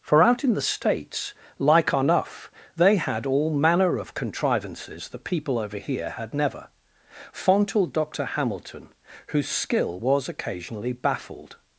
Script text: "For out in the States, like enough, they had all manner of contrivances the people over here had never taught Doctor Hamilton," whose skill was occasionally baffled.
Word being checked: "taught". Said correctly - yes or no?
no